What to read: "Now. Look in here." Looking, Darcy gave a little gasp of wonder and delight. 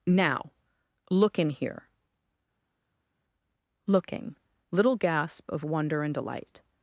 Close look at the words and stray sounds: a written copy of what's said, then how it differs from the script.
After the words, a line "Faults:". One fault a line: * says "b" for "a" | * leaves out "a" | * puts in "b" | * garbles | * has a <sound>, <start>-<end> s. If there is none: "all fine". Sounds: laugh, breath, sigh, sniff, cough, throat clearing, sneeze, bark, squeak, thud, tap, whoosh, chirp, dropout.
"Now. Look in here." Looking, little gasp of wonder and delight.
Faults:
* leaves out "Darcy gave a"